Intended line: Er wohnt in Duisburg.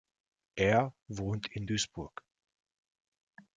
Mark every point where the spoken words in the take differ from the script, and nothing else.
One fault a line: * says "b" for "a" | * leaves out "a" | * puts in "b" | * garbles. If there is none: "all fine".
all fine